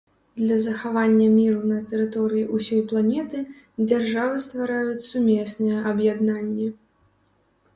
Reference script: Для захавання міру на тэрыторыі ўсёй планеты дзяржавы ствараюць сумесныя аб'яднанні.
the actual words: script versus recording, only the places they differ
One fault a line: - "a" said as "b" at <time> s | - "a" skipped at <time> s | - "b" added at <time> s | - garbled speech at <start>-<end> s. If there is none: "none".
none